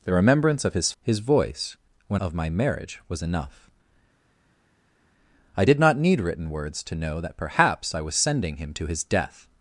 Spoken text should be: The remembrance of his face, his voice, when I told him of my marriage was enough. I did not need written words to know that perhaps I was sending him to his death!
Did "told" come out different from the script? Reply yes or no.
yes